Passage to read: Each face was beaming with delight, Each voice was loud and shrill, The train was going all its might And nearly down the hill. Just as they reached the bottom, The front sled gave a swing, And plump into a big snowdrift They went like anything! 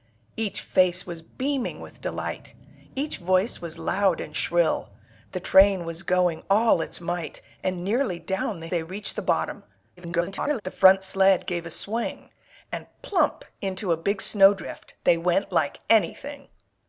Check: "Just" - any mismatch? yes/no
yes